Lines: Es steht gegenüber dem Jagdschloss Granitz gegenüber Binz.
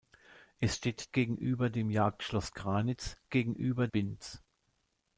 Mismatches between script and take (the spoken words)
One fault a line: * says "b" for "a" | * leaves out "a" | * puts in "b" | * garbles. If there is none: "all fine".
all fine